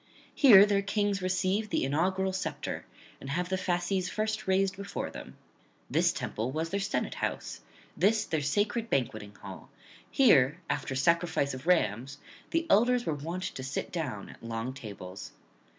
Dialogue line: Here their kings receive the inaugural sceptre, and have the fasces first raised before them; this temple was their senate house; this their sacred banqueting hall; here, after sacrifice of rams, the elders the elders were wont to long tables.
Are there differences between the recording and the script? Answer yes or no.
yes